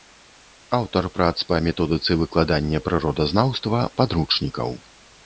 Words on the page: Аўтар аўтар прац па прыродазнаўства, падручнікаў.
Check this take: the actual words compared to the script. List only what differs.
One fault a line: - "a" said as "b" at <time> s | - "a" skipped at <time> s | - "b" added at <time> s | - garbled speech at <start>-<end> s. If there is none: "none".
- "аўтар" skipped at 1.1 s
- "методыцы выкладання" added at 1.7 s